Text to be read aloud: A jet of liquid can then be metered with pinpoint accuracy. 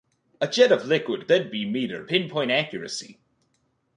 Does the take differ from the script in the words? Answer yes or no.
yes